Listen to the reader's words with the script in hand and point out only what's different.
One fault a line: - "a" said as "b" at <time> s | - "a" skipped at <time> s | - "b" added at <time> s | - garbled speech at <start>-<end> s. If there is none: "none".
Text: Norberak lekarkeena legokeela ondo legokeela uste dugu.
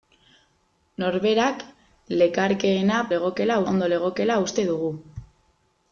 none